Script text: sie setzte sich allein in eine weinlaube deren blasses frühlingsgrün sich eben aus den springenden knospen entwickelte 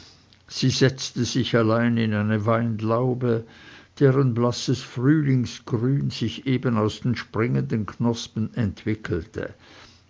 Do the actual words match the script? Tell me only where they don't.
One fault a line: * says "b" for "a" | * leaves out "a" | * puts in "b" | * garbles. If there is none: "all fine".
all fine